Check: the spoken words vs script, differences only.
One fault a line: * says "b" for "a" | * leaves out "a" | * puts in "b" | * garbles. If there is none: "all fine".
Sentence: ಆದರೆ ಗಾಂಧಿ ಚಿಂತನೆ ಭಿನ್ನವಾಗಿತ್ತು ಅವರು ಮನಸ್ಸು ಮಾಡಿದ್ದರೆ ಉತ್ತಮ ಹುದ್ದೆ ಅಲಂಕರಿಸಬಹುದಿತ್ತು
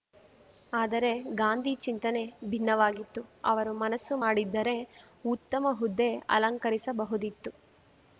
all fine